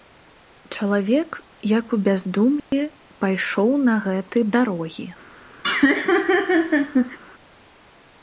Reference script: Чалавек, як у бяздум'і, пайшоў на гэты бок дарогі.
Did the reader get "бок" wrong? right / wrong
wrong